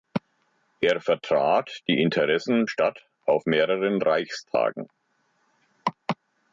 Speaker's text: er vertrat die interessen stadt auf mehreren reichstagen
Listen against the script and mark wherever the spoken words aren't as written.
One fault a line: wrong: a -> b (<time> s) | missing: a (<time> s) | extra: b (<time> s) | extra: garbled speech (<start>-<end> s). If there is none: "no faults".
no faults